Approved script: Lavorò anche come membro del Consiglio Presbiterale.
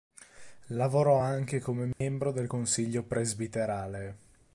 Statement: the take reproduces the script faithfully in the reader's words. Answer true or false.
true